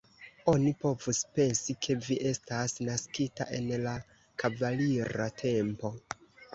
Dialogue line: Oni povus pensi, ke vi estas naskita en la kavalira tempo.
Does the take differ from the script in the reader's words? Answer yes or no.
no